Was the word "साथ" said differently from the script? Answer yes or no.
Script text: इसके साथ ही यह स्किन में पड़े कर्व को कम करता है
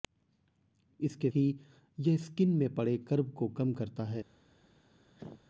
yes